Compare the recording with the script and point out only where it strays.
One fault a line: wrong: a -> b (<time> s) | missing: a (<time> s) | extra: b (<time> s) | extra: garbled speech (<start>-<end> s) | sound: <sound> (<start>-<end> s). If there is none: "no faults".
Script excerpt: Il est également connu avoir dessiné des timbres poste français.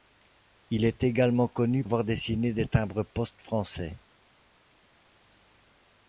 no faults